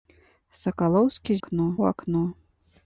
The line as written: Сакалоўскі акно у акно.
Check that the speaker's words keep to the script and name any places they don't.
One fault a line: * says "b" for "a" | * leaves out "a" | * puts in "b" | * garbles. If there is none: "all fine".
all fine